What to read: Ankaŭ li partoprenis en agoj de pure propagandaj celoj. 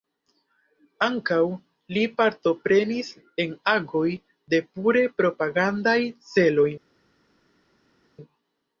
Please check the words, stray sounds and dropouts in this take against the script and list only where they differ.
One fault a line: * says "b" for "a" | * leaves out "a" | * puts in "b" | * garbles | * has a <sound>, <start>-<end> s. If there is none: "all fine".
all fine